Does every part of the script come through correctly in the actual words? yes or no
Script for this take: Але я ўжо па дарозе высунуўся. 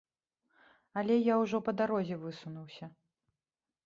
yes